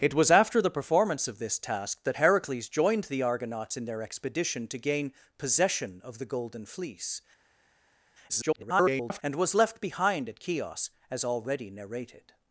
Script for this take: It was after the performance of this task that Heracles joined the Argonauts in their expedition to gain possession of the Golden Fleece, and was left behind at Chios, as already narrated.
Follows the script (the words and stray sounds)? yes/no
no